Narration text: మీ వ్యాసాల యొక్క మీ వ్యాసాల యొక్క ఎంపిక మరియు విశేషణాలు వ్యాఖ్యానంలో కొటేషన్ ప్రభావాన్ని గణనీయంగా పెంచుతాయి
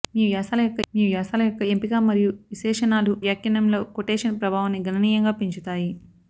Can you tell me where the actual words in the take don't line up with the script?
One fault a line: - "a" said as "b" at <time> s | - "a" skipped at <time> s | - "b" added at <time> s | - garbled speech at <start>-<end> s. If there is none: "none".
none